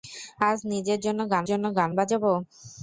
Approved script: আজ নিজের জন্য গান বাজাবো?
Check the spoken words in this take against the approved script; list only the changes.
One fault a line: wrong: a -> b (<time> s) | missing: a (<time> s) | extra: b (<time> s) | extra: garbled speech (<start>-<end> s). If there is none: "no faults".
extra: জন্য গান (1.5 s)